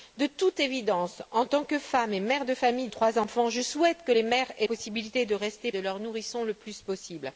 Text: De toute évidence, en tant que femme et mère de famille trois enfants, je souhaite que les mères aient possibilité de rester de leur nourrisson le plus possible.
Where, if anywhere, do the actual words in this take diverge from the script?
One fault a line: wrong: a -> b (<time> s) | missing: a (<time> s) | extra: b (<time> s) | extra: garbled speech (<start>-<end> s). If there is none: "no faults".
no faults